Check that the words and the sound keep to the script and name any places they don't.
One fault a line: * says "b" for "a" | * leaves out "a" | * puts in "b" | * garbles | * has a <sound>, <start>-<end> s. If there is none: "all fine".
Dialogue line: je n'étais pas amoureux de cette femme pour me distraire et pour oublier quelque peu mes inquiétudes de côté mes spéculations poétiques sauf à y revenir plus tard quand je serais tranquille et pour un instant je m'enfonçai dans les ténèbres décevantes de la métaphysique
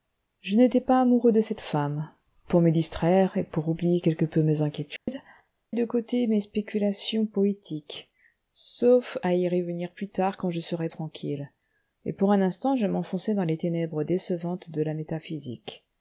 * has a dropout, 5.0-5.1 s